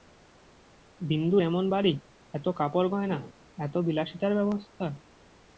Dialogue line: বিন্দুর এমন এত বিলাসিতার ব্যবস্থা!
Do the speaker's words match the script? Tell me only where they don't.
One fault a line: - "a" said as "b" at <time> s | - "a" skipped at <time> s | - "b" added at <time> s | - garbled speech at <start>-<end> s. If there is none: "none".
- "বাড়ি এত কাপড়গয়না" added at 1.7 s